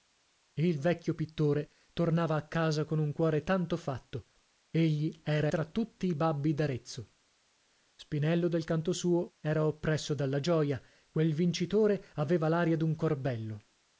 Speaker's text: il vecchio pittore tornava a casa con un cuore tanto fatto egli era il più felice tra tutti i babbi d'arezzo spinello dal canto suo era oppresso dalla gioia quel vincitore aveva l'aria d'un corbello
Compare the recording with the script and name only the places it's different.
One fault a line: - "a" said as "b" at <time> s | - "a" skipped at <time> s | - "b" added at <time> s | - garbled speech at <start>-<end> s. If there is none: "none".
- "il più felice" skipped at 5.5 s